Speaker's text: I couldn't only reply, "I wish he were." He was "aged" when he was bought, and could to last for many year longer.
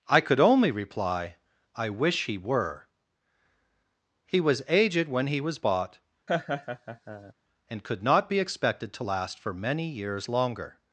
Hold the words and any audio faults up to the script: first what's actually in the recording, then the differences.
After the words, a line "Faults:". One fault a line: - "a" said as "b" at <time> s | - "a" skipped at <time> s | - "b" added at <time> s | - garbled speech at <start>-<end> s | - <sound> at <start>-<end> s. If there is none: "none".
I could only reply, "I wish he were." He was "aged" when he was bought, and could not be expected to last for many years longer.
Faults:
- "couldn't" said as "could" at 0.2 s
- laugh at 6.3-7.3 s
- "not be expected" added at 8.0 s
- "year" said as "years" at 9.9 s